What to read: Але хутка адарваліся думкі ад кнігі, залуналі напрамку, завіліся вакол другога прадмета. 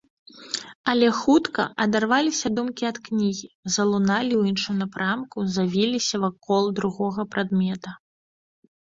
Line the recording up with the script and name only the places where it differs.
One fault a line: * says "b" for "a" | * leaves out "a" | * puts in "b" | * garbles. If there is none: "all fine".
* puts in "ў іншым"